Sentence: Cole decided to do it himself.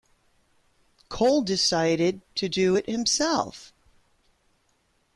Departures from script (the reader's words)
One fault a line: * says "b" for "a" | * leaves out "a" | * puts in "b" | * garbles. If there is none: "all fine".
all fine